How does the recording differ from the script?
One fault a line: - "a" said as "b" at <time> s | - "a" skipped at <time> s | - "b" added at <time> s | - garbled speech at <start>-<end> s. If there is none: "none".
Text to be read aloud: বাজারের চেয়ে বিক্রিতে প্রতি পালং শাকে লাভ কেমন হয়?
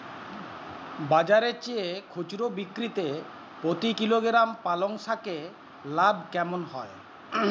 - "খুচরো" added at 2.1 s
- "কিলোগ্রাম" added at 3.9 s